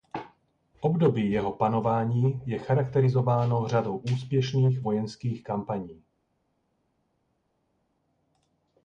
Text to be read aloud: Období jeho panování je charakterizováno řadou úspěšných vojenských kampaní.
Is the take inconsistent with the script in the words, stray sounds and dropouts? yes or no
no